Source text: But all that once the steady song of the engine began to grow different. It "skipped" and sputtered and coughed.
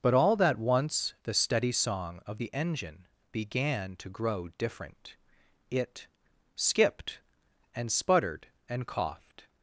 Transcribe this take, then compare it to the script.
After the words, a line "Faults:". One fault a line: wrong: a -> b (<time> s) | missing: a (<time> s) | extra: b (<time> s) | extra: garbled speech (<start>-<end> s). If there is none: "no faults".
But all that once the steady song of the engine began to grow different. It "skipped" and sputtered and coughed.
Faults:
no faults